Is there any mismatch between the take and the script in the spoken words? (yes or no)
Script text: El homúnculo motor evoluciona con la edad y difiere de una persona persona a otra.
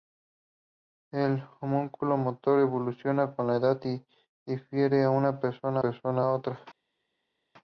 no